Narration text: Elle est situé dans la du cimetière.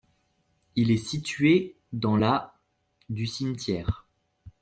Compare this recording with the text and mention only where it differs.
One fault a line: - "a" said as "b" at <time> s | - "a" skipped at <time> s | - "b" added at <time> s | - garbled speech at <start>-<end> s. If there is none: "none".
- "Elle" said as "Il" at 0.8 s